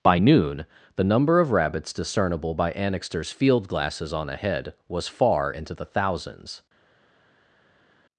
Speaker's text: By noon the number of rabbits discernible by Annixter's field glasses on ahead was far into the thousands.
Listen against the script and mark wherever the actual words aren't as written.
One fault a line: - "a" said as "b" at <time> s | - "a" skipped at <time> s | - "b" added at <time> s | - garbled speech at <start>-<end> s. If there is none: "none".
none